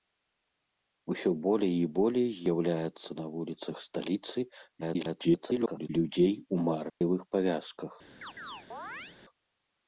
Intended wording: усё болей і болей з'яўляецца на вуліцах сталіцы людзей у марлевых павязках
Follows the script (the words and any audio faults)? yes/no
no